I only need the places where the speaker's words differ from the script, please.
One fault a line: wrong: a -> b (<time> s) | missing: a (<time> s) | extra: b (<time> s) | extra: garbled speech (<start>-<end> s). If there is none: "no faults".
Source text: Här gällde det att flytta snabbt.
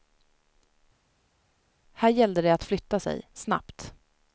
extra: sig (3.0 s)